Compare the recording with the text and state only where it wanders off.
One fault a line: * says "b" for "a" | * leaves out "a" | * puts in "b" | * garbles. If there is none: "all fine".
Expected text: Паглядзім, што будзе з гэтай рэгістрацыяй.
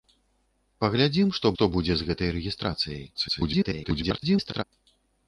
* puts in "што"
* garbles